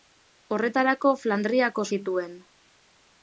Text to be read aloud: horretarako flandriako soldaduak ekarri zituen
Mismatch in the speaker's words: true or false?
true